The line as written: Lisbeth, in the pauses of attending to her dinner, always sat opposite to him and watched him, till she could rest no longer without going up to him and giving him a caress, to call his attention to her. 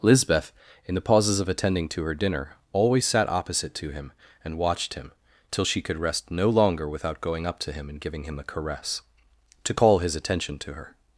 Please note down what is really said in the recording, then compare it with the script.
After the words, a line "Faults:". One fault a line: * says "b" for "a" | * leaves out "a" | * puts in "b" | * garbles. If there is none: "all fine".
Lisbeth, in the pauses of attending to her dinner, always sat opposite to him and watched him, till she could rest no longer without going up to him and giving him a caress, to call his attention to her.
Faults:
all fine